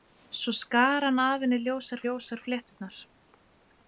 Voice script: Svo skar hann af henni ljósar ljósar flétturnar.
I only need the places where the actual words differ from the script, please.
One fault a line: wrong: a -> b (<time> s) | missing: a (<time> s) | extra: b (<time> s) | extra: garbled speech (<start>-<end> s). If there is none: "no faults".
no faults